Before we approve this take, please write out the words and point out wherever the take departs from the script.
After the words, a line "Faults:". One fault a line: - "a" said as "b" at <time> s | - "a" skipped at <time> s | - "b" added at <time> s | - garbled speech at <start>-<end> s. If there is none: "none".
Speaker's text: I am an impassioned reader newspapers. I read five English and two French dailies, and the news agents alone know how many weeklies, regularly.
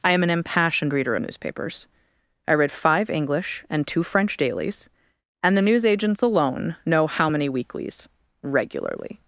I am an impassioned reader newspapers. I read five English and two French dailies, and the news agents alone know how many weeklies, regularly.
Faults:
none